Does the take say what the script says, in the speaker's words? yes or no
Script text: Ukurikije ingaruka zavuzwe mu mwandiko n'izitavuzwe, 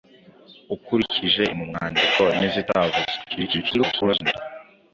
no